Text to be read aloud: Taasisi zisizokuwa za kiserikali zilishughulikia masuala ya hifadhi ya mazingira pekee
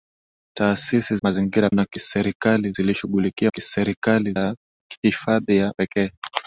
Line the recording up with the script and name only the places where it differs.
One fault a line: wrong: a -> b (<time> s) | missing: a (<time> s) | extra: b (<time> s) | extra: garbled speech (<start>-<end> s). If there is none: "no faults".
wrong: zisizokuwa -> mazingira (1.2 s)
wrong: masuala -> kiserikali (3.5 s)
missing: mazingira (5.7 s)